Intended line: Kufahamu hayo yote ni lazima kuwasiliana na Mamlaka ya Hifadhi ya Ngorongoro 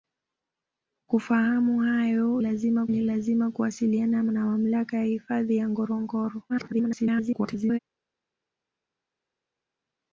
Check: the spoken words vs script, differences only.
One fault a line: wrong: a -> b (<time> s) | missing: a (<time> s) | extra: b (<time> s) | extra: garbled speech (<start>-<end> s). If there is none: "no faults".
wrong: yote -> lazima (2.4 s)
extra: garbled speech (6.5-7.8 s)